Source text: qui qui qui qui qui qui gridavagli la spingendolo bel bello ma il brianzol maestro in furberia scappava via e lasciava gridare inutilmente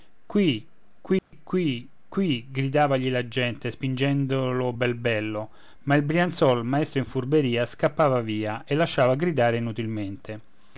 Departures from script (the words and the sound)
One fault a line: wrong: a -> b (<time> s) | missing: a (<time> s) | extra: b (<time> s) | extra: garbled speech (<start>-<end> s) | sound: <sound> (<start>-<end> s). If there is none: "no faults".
sound: dropout (1.2-1.3 s)
missing: qui qui (2.5 s)
extra: gente (3.3 s)